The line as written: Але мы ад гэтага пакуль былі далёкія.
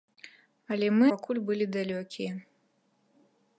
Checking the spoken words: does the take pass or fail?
fail